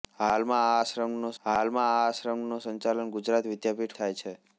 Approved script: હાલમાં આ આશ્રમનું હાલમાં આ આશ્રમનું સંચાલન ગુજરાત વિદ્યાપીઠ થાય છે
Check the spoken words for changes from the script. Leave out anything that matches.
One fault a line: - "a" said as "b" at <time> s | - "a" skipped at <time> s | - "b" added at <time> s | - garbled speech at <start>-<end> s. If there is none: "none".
none